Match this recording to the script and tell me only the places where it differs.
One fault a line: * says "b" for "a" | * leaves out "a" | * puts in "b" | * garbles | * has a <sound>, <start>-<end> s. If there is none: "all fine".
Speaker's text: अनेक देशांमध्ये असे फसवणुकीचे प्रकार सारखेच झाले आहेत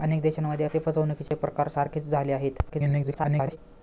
* has a dropout, 1.3-1.3 s
* garbles